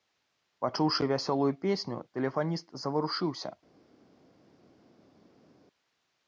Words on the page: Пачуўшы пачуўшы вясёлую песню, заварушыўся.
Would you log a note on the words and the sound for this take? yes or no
yes